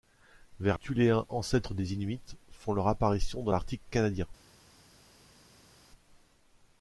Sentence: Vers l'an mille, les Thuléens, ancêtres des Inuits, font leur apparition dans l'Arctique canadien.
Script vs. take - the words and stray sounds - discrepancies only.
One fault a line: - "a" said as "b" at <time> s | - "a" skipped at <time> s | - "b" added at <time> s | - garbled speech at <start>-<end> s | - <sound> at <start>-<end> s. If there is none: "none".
- "l'an mille les" skipped at 0.8 s